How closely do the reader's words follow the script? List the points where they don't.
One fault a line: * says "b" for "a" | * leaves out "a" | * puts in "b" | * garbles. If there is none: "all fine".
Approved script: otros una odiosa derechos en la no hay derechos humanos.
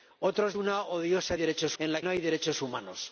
all fine